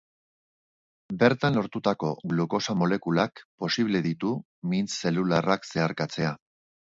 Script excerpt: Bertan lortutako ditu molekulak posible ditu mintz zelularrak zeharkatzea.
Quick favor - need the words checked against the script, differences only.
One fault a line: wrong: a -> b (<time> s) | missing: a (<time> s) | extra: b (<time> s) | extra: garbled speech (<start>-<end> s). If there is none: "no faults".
wrong: ditu -> glukosa (2.3 s)